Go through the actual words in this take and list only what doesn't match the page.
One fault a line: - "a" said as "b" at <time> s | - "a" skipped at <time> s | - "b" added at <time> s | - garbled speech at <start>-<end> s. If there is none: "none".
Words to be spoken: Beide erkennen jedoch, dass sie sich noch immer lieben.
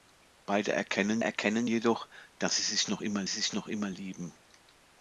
- "erkennen" added at 1.2 s
- "sich noch immer" added at 3.3 s